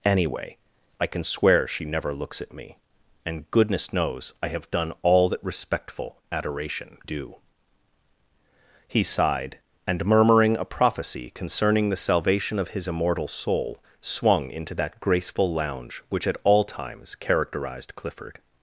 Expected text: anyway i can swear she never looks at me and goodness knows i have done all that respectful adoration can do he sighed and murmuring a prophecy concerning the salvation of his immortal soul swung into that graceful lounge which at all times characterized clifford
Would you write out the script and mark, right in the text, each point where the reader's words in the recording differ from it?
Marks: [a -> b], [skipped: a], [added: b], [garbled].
anyway i can swear she never looks at me and goodness knows i have done all that respectful adoration [skipped: can] do he sighed and murmuring a prophecy concerning the salvation of his immortal soul swung into that graceful lounge which at all times characterized clifford